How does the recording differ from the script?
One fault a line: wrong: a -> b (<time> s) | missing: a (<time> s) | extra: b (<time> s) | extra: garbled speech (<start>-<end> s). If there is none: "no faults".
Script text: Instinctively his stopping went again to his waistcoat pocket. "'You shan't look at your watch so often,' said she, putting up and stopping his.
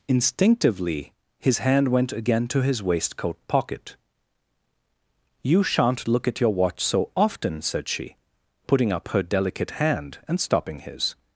wrong: stopping -> hand (1.6 s)
extra: her delicate hand (9.1 s)